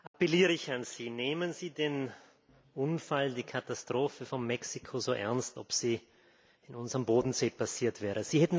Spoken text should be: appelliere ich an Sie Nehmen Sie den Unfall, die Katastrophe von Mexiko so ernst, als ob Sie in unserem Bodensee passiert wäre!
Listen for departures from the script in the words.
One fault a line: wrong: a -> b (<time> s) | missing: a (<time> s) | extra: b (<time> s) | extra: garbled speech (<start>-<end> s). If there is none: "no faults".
missing: als (5.6 s)